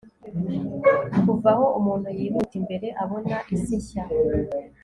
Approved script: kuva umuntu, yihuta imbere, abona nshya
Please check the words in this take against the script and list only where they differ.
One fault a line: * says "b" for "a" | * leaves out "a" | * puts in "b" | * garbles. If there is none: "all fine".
* puts in "aho"
* puts in "isi"